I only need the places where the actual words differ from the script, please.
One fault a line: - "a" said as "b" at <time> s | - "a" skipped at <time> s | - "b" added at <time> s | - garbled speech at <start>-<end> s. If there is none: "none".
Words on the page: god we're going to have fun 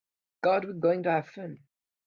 none